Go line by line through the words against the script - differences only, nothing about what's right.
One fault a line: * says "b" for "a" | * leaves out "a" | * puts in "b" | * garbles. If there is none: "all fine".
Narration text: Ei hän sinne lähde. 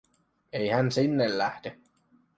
all fine